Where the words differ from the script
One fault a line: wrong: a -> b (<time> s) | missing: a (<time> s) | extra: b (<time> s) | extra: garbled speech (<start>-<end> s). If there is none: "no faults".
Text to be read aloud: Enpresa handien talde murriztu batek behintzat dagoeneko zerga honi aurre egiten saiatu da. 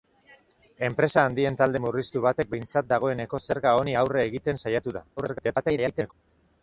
extra: garbled speech (5.2-6.1 s)